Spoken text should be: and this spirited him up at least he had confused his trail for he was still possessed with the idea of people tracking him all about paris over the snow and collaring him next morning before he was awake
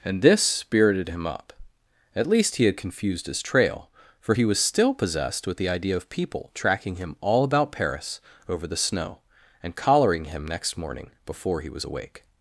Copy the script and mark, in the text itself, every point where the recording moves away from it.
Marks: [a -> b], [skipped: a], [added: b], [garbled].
and this spirited him up at least he had confused his trail for he was still possessed with the idea of people tracking him all about paris over the snow and collaring him next morning before he was awake